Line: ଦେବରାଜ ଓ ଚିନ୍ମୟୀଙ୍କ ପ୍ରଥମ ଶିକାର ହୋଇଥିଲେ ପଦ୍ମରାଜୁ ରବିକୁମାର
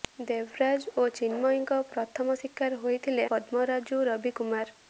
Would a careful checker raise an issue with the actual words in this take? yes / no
no